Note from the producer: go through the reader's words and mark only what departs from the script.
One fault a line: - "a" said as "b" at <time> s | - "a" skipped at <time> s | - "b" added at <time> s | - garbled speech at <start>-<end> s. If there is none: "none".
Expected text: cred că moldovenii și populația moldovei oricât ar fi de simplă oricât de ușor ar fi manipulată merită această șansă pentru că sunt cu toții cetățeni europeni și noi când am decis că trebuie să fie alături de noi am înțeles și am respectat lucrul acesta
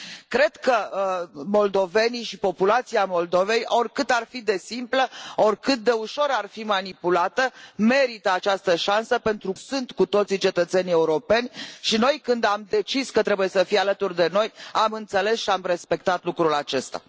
- "că" skipped at 9.5 s